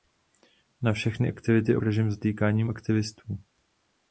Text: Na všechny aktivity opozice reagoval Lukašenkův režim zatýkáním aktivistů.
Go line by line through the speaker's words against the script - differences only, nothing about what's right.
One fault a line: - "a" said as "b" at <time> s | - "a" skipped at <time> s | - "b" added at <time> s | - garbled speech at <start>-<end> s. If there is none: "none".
- "opozice reagoval Lukašenkův" skipped at 1.8 s